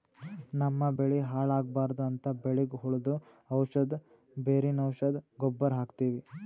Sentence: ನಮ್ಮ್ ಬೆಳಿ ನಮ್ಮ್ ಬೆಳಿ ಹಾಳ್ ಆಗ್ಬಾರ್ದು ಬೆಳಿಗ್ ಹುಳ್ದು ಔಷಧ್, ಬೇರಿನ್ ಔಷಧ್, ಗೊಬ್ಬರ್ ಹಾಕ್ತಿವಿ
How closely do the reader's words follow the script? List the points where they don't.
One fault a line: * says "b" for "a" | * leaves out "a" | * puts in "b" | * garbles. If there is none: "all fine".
* leaves out "ನಮ್ಮ್ ಬೆಳಿ"
* puts in "ಅಂತ್"